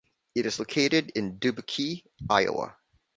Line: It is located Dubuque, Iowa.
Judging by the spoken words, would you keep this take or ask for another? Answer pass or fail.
fail